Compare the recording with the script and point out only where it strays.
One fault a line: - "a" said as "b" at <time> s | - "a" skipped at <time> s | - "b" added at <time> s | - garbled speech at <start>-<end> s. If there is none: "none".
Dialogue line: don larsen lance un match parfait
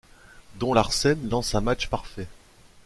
none